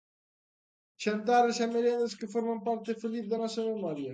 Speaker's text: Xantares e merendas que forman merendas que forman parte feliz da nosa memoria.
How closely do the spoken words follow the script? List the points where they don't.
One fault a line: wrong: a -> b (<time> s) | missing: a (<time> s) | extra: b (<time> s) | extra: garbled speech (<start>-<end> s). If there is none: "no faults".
missing: merendas que forman (2.6 s)